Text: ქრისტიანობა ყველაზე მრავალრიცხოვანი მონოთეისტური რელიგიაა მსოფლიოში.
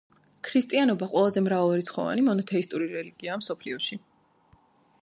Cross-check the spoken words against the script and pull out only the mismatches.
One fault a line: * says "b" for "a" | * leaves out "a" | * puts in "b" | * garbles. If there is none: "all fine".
all fine